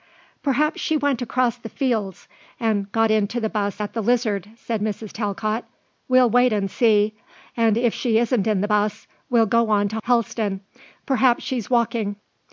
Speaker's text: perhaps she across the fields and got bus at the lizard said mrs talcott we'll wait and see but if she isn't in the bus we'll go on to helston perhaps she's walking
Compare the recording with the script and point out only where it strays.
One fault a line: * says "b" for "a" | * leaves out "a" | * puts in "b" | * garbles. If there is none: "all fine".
* puts in "went"
* puts in "into the"
* says "and" for "but"